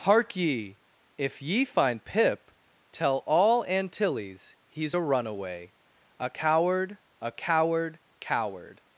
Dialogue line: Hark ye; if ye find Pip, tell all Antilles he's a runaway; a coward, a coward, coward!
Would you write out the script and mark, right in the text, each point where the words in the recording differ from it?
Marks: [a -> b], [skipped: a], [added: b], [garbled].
Hark ye; if ye find Pip, tell all Antilles he's a runaway; a coward, a coward, coward!